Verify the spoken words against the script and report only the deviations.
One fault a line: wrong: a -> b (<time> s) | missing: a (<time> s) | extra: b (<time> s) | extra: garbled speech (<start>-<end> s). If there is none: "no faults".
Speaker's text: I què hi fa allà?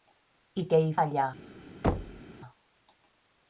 missing: fa (0.9 s)